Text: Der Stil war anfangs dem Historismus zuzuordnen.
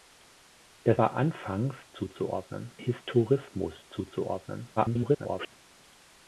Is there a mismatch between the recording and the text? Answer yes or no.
yes